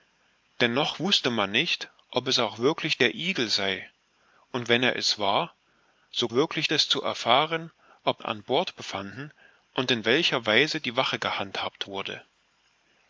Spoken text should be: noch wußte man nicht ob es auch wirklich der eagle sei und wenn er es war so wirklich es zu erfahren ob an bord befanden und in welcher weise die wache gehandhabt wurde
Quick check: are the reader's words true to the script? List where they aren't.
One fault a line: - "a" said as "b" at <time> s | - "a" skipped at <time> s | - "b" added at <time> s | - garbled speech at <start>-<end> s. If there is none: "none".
none